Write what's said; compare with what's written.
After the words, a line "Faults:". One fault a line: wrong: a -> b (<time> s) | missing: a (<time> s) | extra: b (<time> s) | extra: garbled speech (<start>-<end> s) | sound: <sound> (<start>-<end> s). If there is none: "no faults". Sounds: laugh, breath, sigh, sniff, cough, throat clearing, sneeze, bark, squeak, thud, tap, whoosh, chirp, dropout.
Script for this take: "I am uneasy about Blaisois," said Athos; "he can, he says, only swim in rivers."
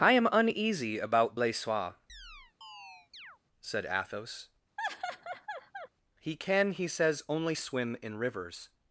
"I am uneasy about Blaisois," said Athos; "he can, he says, only swim in rivers."
Faults:
sound: chirp (2.1-3.4 s)
sound: laugh (4.8-5.9 s)